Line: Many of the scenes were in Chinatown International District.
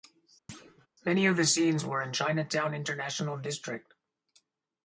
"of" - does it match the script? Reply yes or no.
yes